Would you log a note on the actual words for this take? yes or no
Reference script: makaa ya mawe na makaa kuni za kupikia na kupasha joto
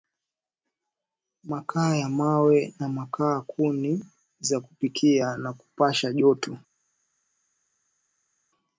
no